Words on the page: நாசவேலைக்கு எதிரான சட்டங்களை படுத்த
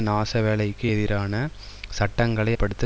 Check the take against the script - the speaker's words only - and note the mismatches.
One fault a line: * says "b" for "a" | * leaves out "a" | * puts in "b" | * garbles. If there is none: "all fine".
all fine